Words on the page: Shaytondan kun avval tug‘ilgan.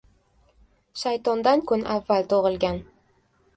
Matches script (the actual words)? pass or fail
pass